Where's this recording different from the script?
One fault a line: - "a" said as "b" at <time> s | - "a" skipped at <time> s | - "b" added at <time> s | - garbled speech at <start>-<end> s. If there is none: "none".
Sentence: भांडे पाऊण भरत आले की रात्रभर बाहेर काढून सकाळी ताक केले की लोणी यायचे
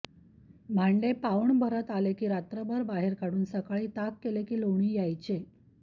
none